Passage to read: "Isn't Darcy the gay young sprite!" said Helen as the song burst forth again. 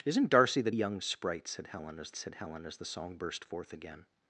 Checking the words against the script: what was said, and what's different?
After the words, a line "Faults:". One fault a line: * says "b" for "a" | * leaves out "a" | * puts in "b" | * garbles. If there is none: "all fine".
"Isn't Darcy the young sprite!" said Helen as said Helen as the song burst forth again.
Faults:
* leaves out "gay"
* puts in "said Helen as"